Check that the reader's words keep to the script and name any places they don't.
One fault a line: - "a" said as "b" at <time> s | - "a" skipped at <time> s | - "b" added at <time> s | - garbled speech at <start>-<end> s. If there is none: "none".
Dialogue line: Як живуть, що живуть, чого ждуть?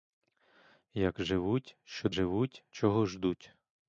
none